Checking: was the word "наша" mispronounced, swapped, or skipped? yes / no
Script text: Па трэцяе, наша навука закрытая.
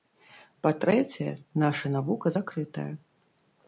no